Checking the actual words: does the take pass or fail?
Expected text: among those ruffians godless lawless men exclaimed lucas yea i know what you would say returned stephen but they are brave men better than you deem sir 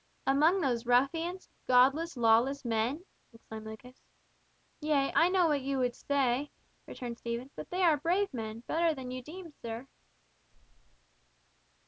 pass